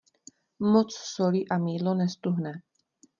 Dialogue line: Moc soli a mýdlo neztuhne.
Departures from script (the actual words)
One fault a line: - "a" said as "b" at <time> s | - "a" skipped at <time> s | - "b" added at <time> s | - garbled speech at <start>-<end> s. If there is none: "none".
none